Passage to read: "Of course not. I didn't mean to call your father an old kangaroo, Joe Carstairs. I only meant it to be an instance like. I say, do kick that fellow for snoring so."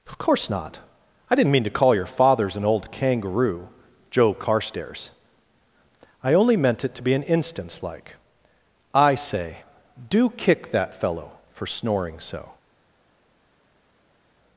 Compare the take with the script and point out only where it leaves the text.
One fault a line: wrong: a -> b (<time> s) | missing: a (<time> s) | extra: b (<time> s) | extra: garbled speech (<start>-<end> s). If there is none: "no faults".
wrong: father -> fathers (2.0 s)